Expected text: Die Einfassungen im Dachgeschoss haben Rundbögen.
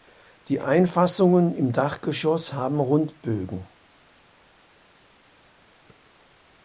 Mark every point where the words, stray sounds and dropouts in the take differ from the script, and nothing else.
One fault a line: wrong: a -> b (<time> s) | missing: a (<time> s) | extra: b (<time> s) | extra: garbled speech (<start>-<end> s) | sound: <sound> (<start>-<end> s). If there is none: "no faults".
no faults